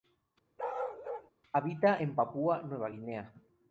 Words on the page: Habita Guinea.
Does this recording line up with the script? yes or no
no